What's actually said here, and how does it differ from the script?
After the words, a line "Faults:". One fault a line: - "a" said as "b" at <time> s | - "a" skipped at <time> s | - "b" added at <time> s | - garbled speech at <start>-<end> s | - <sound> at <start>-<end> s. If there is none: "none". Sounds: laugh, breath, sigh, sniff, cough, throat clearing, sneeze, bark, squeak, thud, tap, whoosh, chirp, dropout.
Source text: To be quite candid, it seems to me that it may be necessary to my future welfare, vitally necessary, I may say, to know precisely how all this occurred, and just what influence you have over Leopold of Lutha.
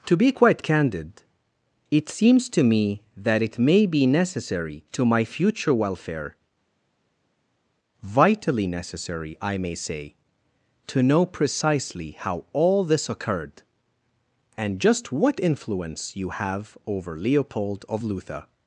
To be quite candid, it seems to me that it may be necessary to my future welfare, vitally necessary, I may say, to know precisely how all this occurred, and just what influence you have over Leopold of Lutha.
Faults:
none